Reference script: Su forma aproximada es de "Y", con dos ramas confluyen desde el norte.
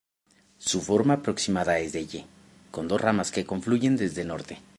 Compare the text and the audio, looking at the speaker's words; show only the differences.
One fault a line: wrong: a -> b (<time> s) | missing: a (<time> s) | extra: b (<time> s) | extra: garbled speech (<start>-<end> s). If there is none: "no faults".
extra: que (3.3 s)